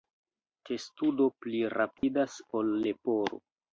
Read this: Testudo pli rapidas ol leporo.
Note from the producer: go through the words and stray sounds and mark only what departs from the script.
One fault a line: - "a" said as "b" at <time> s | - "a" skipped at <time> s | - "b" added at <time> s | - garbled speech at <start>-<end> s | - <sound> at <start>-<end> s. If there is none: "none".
- dropout at 2.0-2.0 s